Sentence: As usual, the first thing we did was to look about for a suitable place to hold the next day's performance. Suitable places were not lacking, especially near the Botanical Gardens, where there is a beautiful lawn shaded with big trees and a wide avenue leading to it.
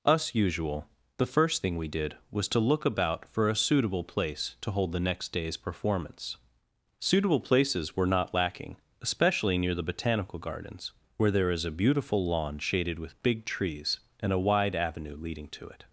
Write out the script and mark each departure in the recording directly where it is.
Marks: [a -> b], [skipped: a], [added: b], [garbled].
[As -> Us] usual, the first thing we did was to look about for a suitable place to hold the next day's performance. Suitable places were not lacking, especially near the Botanical Gardens, where there is a beautiful lawn shaded with big trees and a wide avenue leading to it.